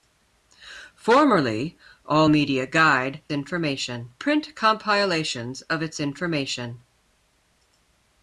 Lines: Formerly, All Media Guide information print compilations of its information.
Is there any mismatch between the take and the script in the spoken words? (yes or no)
no